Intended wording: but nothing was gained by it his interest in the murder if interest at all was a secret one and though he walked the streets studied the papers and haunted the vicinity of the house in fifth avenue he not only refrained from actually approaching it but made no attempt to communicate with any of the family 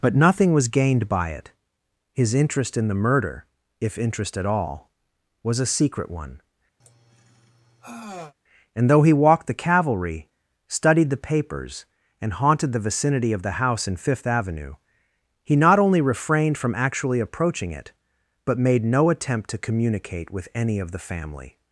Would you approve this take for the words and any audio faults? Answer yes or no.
no